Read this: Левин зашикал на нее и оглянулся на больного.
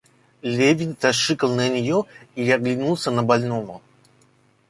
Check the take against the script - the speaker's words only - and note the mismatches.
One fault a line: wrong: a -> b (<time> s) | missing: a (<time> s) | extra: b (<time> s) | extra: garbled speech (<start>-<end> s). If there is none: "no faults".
no faults